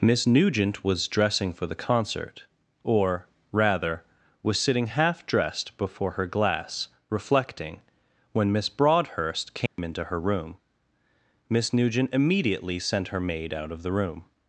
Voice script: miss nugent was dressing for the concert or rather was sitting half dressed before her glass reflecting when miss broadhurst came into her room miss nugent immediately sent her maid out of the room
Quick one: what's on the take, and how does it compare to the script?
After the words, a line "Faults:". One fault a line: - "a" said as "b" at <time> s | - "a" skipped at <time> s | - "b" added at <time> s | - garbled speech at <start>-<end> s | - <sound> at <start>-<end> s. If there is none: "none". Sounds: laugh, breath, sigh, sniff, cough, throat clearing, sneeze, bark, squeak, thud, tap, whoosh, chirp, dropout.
miss nugent was dressing for the concert or rather was sitting half dressed before her glass reflecting when miss broadhurst came into her room miss nugent immediately sent her maid out of the room
Faults:
- dropout at 9.7-9.8 s